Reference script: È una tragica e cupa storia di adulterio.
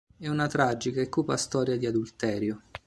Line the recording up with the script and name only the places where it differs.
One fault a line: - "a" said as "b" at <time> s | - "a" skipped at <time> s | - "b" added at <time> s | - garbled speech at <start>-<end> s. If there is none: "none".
none